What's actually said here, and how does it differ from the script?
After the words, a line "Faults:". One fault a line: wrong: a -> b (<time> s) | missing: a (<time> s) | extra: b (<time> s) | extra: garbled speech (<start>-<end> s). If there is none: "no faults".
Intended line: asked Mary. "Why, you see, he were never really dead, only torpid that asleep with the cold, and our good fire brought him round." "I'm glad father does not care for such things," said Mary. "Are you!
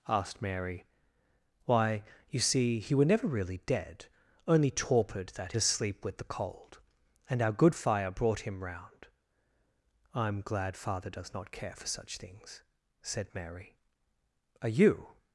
asked Mary. "Why, you see, he were never really dead, only torpid that asleep with the cold, and our good fire brought him round." "I'm glad father does not care for such things," said Mary. "Are you!
Faults:
no faults